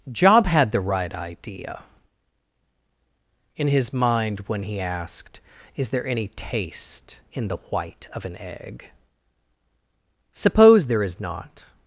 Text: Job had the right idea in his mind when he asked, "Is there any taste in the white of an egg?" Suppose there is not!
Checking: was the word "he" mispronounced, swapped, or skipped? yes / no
no